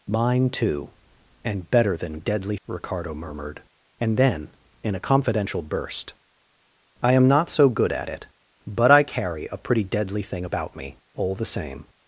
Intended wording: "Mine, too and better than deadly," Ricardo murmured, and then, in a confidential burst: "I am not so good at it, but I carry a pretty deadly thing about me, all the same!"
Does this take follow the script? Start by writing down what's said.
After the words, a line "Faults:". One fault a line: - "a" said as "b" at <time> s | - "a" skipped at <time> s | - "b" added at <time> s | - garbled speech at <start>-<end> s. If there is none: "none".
"Mine, too and better than deadly," Ricardo murmured, and then, in a confidential burst: "I am not so good at it, but I carry a pretty deadly thing about me, all the same!"
Faults:
none